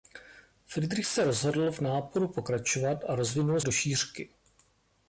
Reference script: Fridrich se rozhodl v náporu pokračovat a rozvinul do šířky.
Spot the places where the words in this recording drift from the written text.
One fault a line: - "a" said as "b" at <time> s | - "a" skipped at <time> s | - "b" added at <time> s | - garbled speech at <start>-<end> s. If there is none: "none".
none